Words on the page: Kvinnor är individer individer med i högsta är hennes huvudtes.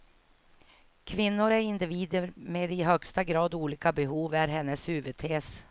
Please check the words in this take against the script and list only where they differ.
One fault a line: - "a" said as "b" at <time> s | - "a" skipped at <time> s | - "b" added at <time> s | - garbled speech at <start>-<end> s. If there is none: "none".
- "individer" skipped at 2.3 s
- "grad olika behov" added at 3.2 s